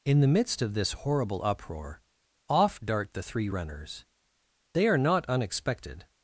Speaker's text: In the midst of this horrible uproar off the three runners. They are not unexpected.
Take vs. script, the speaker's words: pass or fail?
fail